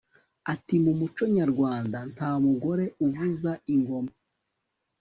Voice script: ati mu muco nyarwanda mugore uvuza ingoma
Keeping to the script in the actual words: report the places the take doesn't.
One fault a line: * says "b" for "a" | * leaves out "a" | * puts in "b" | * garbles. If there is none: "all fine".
* puts in "nta"